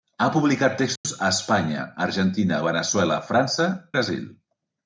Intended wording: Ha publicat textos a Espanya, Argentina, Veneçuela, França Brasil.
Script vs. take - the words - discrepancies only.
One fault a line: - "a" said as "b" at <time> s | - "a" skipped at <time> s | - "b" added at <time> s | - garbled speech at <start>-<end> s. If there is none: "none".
none